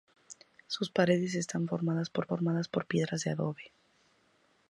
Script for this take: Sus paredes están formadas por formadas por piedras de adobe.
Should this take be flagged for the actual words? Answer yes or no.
no